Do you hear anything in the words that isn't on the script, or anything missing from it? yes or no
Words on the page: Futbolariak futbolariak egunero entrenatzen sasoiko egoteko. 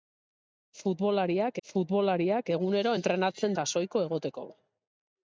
no